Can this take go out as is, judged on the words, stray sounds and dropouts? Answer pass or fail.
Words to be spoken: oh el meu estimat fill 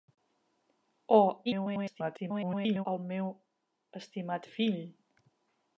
fail